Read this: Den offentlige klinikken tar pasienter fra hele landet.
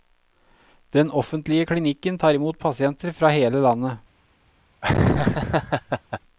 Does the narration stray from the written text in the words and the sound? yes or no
yes